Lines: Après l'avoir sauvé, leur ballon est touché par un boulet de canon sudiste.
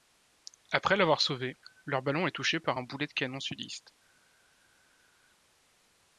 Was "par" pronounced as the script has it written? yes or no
yes